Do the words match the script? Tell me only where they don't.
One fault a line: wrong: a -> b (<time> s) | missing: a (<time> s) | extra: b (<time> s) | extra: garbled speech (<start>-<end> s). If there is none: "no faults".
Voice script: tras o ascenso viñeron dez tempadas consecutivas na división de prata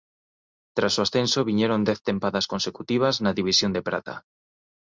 no faults